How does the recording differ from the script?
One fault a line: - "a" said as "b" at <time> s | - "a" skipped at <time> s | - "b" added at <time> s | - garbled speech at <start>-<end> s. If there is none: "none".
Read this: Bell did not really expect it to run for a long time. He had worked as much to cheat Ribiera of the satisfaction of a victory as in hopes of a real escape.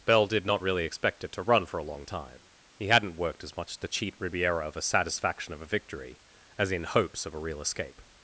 - "had" said as "hadn't" at 2.9 s
- "the" said as "a" at 4.8 s